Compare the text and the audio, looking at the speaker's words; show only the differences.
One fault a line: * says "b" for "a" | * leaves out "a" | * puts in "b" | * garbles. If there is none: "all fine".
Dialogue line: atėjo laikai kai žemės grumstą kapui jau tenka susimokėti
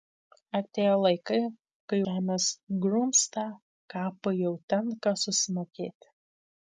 all fine